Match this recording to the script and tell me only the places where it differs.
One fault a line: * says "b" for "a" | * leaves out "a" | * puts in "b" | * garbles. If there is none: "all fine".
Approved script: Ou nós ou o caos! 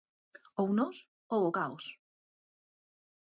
all fine